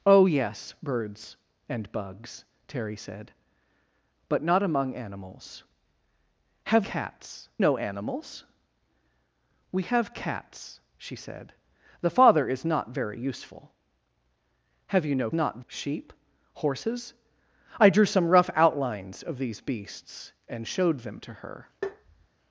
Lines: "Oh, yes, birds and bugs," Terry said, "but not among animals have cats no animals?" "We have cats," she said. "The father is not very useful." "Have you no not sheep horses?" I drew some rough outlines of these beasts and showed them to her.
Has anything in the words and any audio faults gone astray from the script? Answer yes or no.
yes